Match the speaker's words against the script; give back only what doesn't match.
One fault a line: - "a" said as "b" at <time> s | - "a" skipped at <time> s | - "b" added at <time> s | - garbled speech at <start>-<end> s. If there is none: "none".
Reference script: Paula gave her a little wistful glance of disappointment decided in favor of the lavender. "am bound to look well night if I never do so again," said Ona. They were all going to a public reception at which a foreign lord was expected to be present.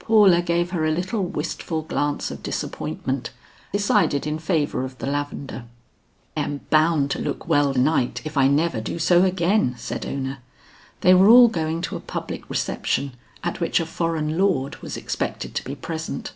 none